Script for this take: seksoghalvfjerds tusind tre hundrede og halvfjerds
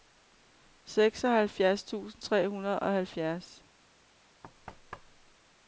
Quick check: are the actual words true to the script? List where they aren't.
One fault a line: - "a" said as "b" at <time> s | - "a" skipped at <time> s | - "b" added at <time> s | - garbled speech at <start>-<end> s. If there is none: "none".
none